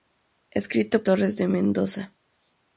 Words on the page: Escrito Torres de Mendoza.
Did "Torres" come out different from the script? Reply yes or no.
no